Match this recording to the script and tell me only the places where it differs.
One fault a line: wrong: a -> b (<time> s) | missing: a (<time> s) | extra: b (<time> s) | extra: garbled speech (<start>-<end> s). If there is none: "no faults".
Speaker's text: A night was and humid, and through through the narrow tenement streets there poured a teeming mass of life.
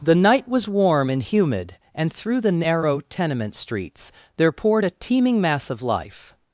wrong: A -> The (0.0 s)
extra: warm (0.7 s)
missing: through (2.4 s)